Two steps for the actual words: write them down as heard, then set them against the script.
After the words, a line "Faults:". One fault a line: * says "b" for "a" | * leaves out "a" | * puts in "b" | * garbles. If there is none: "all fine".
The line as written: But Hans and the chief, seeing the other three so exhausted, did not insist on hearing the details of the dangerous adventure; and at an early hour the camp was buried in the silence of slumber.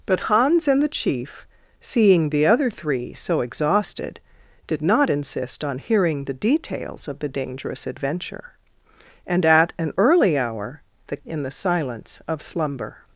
But Hans and the chief, seeing the other three so exhausted, did not insist on hearing the details of the dangerous adventure; and at an early hour the in the silence of slumber.
Faults:
* leaves out "camp was buried"